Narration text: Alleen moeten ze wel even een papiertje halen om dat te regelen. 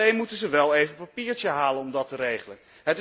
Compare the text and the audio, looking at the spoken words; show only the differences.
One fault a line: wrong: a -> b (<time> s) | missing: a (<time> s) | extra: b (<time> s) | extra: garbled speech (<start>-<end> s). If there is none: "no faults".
no faults